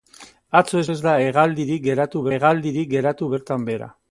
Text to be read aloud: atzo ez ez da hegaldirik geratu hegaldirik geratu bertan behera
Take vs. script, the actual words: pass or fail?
pass